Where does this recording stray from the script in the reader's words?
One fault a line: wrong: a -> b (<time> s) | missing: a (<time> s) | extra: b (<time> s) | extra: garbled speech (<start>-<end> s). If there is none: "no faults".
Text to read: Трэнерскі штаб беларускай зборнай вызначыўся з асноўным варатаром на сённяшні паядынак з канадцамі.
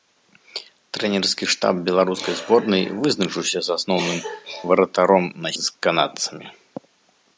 missing: сённяшні паядынак (5.6 s)